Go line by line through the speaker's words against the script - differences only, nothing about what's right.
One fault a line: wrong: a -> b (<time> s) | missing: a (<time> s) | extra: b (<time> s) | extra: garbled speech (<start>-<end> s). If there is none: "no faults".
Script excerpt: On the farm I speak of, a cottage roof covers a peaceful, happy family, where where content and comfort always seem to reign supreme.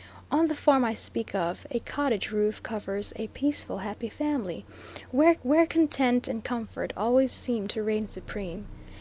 no faults